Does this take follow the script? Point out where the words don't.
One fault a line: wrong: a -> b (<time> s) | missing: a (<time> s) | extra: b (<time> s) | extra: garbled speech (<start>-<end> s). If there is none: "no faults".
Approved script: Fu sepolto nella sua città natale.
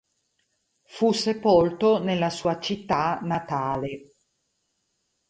no faults